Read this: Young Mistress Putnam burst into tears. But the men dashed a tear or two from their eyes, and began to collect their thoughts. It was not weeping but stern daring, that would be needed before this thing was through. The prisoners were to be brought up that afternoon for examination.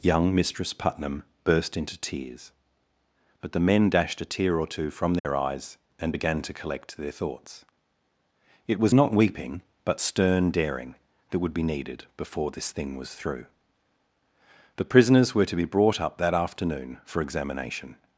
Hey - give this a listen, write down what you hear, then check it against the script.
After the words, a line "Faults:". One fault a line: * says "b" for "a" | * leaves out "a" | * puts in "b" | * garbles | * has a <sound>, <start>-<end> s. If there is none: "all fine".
Young Mistress Putnam burst into tears. But the men dashed a tear or two from their eyes, and began to collect their thoughts. It was not weeping but stern daring, that would be needed before this thing was through. The prisoners were to be brought up that afternoon for examination.
Faults:
* has a dropout, 5.2-5.2 s